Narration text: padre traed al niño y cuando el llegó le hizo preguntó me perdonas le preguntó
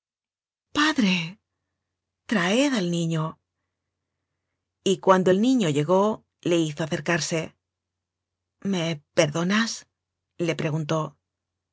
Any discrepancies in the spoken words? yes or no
yes